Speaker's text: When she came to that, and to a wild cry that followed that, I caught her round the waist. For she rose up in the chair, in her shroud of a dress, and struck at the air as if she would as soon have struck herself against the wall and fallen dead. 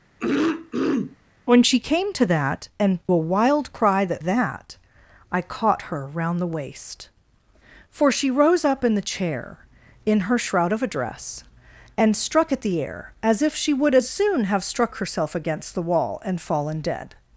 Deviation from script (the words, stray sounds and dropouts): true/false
true